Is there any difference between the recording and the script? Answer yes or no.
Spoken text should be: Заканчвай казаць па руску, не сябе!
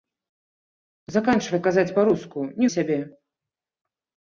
no